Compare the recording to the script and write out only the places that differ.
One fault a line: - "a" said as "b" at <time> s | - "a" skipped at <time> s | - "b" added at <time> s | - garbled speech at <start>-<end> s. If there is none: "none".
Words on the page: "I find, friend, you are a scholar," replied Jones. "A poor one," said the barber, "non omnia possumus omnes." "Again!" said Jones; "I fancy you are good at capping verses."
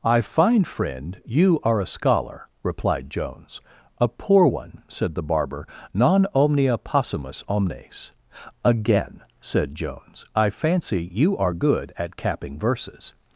none